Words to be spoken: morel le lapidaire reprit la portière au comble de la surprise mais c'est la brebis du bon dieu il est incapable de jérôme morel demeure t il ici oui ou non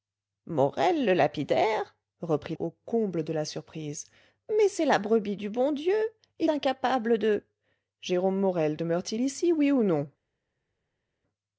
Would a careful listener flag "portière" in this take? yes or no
yes